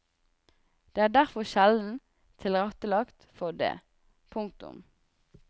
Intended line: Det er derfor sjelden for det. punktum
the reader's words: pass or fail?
fail